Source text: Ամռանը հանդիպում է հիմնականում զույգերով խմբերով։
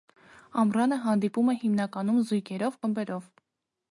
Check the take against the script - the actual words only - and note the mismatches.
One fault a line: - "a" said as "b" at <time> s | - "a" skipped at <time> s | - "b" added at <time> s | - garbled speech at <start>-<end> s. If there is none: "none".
none